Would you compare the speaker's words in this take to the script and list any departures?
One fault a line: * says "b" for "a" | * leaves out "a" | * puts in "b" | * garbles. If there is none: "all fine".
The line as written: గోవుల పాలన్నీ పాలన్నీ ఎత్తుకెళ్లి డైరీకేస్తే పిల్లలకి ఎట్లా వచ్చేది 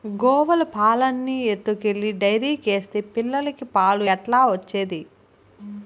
* leaves out "పాలన్నీ"
* puts in "పాలు"